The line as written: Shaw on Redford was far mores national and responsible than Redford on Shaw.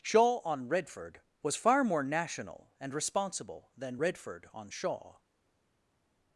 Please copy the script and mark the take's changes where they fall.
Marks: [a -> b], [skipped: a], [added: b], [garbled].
Shaw on Redford was far [mores -> more] national and responsible than Redford on Shaw.